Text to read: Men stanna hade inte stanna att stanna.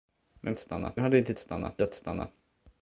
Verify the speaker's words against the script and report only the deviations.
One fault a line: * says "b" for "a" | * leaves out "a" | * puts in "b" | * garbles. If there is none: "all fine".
all fine